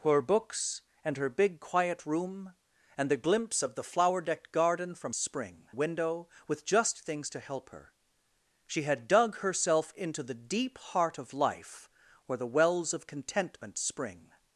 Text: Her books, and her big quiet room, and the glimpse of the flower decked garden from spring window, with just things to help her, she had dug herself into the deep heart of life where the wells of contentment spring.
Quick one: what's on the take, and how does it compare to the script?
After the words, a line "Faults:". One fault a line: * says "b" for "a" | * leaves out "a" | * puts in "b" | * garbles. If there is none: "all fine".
Her books, and her big quiet room, and the glimpse of the flower decked garden from spring window, with just things to help her, she had dug herself into the deep heart of life where the wells of contentment spring.
Faults:
all fine